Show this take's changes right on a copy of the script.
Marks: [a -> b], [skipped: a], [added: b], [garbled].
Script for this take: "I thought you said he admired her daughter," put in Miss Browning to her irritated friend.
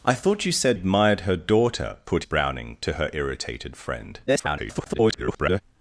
"I thought you said [skipped: he] admired her daughter," put [skipped: in Miss] Browning to her irritated friend. [garbled]